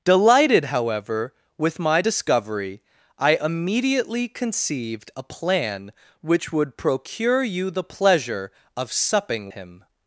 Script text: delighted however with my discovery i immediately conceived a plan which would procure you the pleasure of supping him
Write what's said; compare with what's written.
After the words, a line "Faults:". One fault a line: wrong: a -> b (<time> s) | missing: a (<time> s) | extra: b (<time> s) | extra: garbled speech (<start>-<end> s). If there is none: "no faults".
delighted however with my discovery i immediately conceived a plan which would procure you the pleasure of supping him
Faults:
no faults